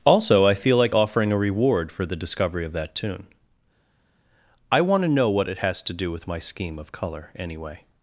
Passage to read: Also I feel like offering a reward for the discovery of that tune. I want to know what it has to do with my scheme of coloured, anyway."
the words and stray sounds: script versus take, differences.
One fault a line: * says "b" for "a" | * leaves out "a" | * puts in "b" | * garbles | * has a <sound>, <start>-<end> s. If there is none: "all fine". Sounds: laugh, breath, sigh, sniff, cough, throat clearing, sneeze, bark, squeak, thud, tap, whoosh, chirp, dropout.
* says "colour" for "coloured"